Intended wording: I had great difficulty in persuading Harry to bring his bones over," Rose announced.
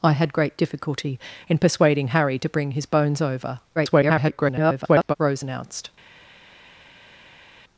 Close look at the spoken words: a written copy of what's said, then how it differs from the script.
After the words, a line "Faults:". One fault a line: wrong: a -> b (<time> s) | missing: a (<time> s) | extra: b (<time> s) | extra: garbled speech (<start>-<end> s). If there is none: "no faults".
I had great difficulty in persuading Harry to bring his bones over," [garbled] Rose announced.
Faults:
extra: garbled speech (3.8-5.1 s)